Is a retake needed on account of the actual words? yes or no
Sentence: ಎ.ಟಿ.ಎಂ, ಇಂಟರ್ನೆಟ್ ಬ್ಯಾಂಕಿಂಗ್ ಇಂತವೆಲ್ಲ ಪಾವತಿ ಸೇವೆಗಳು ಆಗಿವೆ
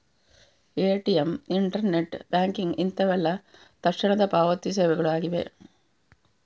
yes